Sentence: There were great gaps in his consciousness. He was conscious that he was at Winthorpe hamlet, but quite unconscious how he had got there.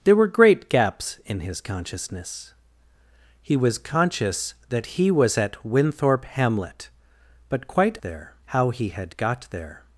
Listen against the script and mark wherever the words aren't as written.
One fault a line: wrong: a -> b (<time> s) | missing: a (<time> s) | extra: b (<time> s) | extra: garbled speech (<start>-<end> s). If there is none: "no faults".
wrong: unconscious -> there (8.0 s)